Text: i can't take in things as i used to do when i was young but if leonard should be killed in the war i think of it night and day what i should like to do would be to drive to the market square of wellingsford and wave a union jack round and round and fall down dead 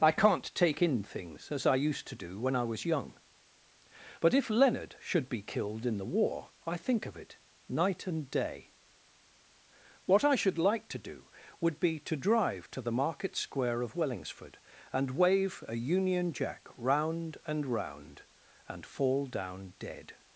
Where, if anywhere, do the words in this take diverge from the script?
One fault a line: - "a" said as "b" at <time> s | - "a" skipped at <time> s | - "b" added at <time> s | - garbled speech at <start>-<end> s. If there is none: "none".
none